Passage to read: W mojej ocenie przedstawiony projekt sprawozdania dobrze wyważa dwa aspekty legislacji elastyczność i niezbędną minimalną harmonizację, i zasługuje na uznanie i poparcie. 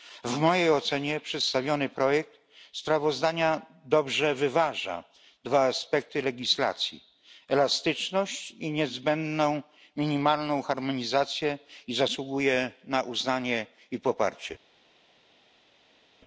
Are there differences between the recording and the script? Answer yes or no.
no